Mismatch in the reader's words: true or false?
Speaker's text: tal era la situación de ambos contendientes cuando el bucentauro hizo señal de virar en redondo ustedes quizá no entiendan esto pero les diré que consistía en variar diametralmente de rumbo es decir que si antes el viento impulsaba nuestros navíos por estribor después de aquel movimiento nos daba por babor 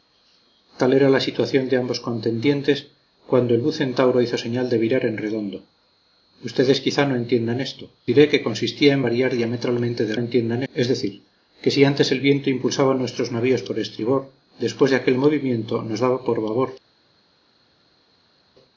true